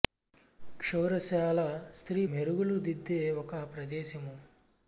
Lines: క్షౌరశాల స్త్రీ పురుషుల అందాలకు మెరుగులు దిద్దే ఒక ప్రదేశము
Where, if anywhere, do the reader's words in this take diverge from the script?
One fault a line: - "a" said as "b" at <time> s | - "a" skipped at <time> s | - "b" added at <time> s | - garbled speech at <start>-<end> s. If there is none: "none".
- "పురుషుల అందాలకు" skipped at 2.2 s